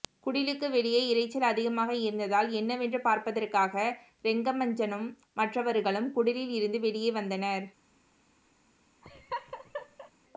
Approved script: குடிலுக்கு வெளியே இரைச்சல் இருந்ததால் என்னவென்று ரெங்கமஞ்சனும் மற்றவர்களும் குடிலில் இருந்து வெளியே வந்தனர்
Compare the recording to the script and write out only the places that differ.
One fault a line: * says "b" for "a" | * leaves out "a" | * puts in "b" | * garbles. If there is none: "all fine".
* puts in "அதிகமாக"
* puts in "பார்ப்பதற்காக"